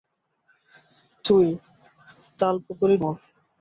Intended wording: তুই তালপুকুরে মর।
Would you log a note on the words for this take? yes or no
no